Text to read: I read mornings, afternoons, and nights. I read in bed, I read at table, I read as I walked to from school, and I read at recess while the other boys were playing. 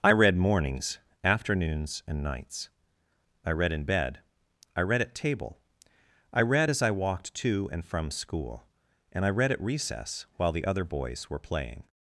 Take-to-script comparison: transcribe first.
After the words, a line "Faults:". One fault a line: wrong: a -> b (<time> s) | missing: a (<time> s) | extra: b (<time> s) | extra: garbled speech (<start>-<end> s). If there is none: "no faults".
I read mornings, afternoons, and nights. I read in bed, I read at table, I read as I walked to and from school, and I read at recess while the other boys were playing.
Faults:
extra: and (7.7 s)